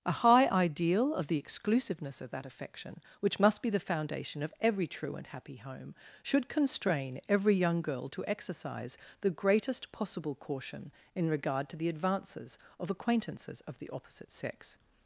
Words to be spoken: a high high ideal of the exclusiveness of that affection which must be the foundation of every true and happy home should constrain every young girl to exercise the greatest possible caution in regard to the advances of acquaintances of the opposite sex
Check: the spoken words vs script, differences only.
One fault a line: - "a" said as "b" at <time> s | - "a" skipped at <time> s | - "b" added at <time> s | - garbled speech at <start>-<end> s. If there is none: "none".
- "high" skipped at 0.5 s